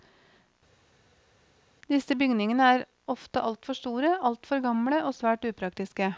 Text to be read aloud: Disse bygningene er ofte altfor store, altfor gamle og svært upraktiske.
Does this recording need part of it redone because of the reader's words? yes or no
no